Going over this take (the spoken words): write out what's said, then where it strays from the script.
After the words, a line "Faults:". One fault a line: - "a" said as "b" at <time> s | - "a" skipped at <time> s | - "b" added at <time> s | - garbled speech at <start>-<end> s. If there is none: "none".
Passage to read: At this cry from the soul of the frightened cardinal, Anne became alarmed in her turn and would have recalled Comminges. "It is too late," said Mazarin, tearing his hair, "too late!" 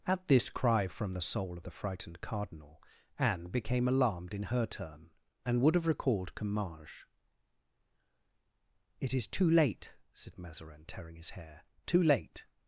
At this cry from the soul of the frightened cardinal, Anne became alarmed in her turn and would have recalled Comminges. "It is too late," said Mazarin, tearing his hair, "too late!"
Faults:
none